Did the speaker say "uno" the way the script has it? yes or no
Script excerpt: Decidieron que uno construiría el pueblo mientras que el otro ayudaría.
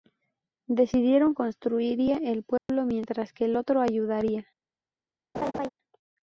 no